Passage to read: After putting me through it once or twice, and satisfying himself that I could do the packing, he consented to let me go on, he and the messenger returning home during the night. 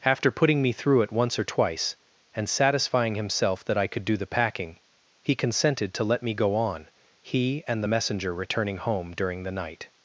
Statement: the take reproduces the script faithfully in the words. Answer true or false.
true